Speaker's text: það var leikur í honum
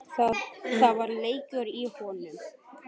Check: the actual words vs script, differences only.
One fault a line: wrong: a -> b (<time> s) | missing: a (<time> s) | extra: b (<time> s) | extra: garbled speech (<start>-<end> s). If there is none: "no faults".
no faults